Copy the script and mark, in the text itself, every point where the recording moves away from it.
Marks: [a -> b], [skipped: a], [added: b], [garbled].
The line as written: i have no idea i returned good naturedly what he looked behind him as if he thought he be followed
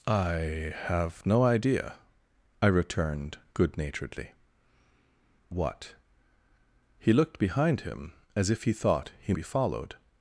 i have no idea i returned good naturedly what he looked behind him as if he thought he be followed